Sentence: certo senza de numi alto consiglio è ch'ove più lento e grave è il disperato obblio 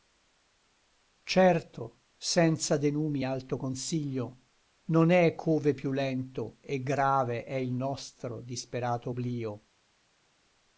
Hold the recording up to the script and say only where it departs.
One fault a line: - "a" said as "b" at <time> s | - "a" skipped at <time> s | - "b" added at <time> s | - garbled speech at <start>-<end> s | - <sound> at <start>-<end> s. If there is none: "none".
- "non" added at 4.9 s
- "nostro" added at 7.7 s